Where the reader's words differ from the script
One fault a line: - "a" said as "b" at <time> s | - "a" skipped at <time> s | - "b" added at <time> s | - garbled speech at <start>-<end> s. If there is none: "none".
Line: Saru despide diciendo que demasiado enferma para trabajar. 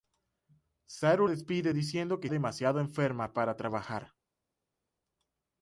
none